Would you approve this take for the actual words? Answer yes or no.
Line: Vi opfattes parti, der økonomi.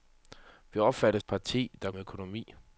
yes